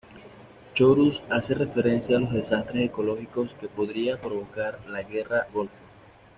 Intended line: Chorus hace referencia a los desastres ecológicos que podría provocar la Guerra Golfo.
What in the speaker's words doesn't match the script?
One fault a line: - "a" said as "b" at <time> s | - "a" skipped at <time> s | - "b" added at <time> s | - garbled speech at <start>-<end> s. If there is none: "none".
none